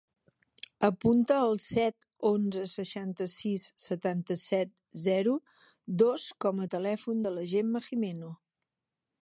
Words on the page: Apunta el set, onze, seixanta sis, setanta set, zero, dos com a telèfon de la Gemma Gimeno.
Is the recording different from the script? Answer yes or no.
no